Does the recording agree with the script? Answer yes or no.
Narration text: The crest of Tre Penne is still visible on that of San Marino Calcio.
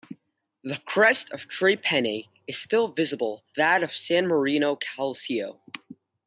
no